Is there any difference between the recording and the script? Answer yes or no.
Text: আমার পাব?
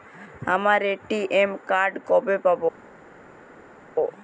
yes